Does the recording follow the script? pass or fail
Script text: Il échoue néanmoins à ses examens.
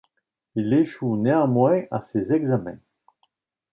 pass